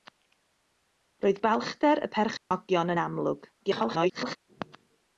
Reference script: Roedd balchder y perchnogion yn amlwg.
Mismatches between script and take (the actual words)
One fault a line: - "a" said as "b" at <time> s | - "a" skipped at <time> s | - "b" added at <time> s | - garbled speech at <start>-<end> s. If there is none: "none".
- garbled speech at 3.6-4.4 s